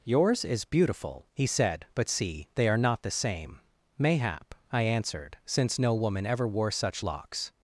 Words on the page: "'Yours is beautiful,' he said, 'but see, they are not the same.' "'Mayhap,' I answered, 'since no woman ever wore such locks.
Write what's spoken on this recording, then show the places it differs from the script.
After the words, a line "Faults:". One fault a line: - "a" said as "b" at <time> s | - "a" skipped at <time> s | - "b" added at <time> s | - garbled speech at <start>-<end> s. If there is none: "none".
"'Yours is beautiful,' he said, 'but see, they are not the same.' "'Mayhap,' I answered, 'since no woman ever wore such locks.
Faults:
none